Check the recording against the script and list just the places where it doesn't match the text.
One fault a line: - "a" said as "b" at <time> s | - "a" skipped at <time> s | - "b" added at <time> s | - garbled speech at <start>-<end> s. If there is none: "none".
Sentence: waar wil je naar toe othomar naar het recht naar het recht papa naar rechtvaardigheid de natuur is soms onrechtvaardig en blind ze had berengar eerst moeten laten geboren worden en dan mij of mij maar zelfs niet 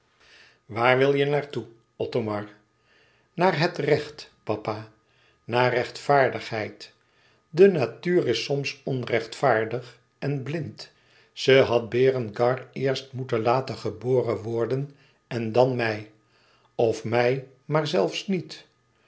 - "naar het recht" skipped at 4.3 s